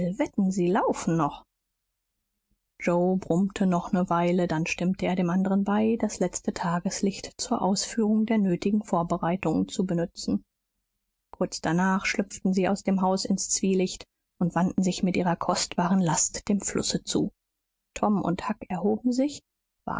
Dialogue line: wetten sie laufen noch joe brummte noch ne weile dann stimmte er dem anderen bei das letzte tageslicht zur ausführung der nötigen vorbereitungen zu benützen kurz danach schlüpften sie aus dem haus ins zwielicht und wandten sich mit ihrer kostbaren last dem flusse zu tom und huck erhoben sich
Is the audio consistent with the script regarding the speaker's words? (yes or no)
yes